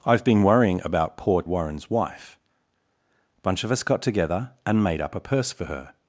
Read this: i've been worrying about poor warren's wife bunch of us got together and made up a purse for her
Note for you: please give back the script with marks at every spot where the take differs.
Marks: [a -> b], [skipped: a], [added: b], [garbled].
i've been worrying about poor warren's wife bunch of us got together and made up a purse for her